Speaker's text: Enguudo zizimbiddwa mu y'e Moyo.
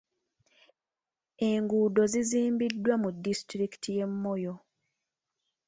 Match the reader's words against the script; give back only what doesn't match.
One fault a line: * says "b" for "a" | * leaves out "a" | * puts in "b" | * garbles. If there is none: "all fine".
* puts in "disitulikiti"